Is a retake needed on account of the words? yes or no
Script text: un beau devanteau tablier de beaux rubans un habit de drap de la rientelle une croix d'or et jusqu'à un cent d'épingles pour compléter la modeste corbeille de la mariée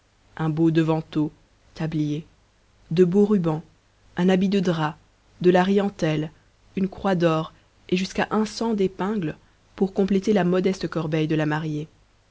no